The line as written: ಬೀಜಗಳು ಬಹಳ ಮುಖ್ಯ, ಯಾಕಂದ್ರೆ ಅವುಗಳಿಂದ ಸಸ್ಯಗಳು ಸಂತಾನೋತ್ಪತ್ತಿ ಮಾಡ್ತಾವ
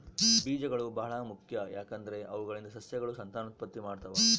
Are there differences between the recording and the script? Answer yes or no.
no